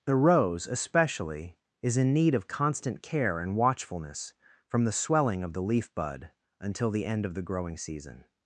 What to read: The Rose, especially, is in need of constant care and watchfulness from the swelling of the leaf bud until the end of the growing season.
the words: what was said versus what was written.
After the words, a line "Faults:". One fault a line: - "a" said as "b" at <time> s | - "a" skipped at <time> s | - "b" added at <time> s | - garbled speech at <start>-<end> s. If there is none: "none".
The Rose, especially, is in need of constant care and watchfulness from the swelling of the leaf bud until the end of the growing season.
Faults:
none